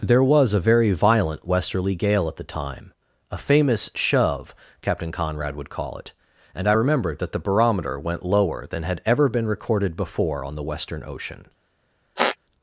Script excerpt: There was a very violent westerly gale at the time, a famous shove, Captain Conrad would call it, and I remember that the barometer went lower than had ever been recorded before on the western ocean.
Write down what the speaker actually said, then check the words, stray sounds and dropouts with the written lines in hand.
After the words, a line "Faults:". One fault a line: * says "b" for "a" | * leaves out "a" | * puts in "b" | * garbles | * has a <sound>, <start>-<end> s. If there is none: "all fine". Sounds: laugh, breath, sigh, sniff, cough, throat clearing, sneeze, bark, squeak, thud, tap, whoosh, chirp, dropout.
There was a very violent westerly gale at the time, a famous shove, Captain Conrad would call it, and I remember that the barometer went lower than had ever been recorded before on the western ocean.
Faults:
* has a squeak, 12.2-12.4 s